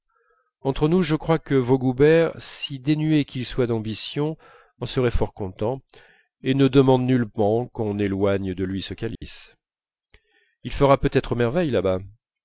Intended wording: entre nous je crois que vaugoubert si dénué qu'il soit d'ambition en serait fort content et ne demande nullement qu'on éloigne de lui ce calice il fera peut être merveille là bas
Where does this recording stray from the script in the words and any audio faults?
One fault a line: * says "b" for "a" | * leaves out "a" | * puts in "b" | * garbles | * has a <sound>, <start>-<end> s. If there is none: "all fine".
* has a dropout, 9.2-9.2 s